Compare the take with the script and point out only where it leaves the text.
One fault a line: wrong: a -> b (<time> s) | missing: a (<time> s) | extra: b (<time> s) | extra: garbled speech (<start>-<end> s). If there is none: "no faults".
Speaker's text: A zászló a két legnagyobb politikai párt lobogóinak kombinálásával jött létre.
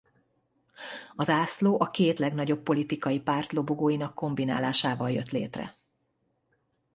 no faults